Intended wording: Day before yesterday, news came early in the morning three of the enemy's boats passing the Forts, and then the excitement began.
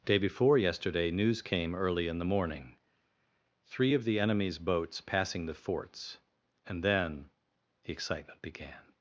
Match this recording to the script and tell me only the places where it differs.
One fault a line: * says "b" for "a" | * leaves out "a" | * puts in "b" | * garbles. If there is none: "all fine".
all fine